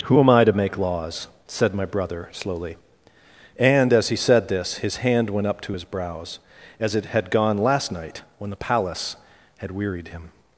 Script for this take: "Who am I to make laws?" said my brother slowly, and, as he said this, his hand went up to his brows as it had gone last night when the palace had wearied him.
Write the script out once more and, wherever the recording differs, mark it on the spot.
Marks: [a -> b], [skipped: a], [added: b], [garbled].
"Who am I to make laws?" said my brother slowly, and, as he said this, his hand went up to his brows as it had gone last night when the palace had wearied him.